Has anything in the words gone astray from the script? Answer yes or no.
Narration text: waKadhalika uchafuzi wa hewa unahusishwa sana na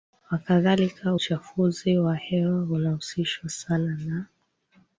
no